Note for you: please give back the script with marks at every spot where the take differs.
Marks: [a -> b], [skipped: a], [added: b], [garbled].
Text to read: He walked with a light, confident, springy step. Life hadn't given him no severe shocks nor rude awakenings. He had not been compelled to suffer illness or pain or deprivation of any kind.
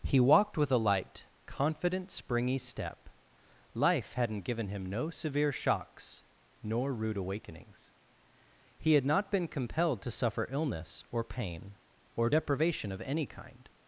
He walked with a light, confident, springy step. Life hadn't given him no severe shocks nor rude awakenings. He had not been compelled to suffer illness or pain or deprivation of any kind.